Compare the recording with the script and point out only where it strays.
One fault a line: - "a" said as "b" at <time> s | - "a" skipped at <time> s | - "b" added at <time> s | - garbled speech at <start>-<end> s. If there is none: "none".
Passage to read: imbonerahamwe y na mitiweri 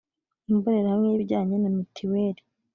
- "ibijyanye" added at 1.1 s